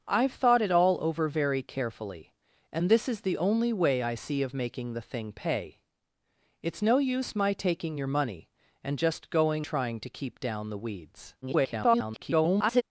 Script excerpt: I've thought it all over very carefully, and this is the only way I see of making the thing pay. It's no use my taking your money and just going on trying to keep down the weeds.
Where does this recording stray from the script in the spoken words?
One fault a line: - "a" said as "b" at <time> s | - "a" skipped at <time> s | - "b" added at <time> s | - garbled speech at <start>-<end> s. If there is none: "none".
- "on" skipped at 9.7 s
- garbled speech at 11.4-12.8 s